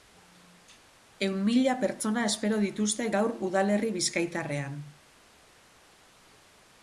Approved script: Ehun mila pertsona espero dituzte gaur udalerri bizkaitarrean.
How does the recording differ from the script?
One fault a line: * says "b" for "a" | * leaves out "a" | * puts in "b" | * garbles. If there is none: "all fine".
all fine